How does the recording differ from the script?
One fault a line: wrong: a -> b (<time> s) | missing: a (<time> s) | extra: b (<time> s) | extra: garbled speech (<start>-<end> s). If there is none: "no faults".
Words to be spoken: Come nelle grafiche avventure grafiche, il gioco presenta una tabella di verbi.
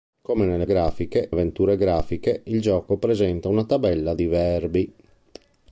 no faults